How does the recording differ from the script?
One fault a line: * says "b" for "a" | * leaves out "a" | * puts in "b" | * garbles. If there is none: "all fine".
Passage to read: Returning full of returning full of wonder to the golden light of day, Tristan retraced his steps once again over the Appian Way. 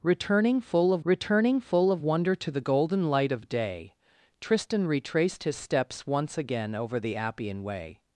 all fine